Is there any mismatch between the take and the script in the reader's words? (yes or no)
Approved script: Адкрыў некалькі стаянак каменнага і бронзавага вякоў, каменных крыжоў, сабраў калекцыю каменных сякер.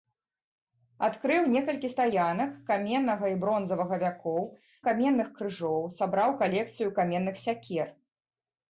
no